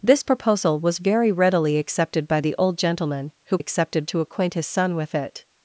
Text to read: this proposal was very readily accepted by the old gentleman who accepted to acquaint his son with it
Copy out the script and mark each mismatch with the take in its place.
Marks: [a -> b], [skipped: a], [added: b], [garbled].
this proposal was very readily accepted by the old gentleman who accepted to acquaint his son with it